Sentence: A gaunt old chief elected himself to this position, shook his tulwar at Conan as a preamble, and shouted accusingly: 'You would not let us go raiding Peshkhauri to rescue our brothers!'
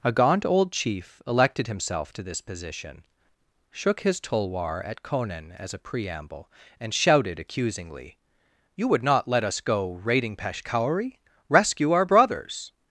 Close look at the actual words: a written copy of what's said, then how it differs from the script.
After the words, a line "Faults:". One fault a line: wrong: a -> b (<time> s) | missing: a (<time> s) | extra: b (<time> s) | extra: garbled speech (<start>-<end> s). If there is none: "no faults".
A gaunt old chief elected himself to this position, shook his tulwar at Conan as a preamble, and shouted accusingly: 'You would not let us go raiding Peshkhauri rescue our brothers!'
Faults:
missing: to (11.2 s)